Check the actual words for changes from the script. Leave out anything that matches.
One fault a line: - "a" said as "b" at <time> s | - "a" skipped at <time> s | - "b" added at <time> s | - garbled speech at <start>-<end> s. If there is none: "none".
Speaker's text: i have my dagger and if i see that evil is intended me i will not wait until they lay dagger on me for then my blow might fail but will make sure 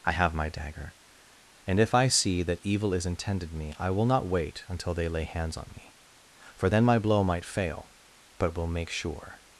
- "dagger" said as "hands" at 5.2 s